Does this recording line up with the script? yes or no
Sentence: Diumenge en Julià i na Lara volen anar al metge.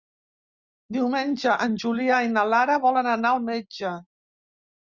yes